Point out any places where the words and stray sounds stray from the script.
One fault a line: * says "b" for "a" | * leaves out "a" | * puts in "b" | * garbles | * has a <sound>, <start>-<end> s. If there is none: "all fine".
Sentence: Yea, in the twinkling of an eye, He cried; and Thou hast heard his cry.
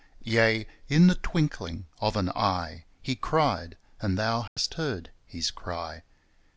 * has a dropout, 4.5-4.6 s